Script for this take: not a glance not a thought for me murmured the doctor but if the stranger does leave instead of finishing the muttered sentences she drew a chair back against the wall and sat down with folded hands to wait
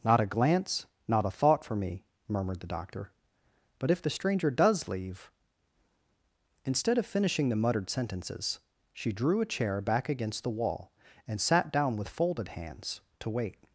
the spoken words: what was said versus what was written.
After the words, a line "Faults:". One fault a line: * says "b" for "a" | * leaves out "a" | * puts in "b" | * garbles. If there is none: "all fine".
not a glance not a thought for me murmured the doctor but if the stranger does leave instead of finishing the muttered sentences she drew a chair back against the wall and sat down with folded hands to wait
Faults:
all fine